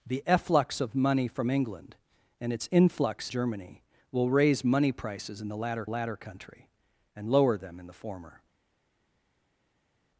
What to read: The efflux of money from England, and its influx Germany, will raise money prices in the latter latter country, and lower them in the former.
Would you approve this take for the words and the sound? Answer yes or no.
yes